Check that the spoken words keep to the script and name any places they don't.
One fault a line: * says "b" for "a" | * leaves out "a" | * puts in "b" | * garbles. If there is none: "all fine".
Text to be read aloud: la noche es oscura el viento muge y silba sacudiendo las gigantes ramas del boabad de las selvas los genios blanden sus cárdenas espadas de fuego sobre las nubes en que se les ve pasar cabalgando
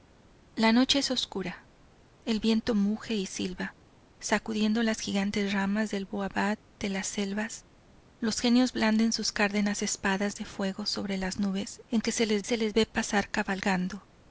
* puts in "se les"